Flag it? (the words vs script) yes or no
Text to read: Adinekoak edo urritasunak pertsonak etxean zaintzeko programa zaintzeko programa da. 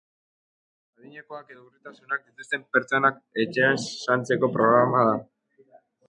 yes